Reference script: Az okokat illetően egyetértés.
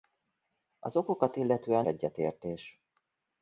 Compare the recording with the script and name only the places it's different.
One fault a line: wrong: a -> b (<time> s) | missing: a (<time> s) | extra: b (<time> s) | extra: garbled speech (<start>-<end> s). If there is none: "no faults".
no faults